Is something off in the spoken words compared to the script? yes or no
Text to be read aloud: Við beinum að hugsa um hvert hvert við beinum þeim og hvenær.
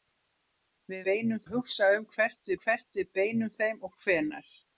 no